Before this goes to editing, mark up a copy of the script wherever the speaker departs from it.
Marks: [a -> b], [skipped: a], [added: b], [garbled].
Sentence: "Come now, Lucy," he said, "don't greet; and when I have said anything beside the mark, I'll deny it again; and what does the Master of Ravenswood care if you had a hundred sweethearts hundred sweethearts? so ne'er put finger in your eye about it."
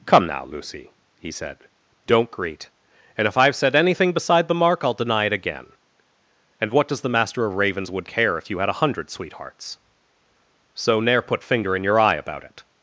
"Come now, Lucy," he said, "don't greet; and [when -> if] I have said anything beside the mark, I'll deny it again; and what does the Master of Ravenswood care if you had a hundred sweethearts [skipped: hundred sweethearts?] so ne'er put finger in your eye about it."